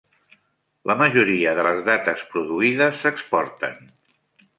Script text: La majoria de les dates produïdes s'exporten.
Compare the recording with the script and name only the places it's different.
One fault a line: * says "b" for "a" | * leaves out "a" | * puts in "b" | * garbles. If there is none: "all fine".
all fine